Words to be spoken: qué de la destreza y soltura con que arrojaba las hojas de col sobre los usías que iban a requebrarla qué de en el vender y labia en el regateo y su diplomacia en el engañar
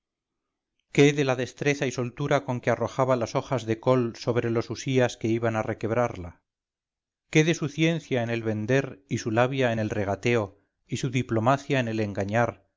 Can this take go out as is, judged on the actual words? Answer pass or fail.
fail